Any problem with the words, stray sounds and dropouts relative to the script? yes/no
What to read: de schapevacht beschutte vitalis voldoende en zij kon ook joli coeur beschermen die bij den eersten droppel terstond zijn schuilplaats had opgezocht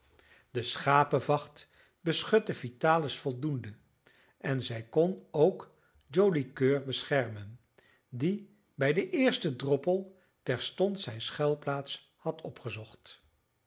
no